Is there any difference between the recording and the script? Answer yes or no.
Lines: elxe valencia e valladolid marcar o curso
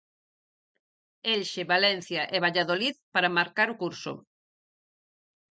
yes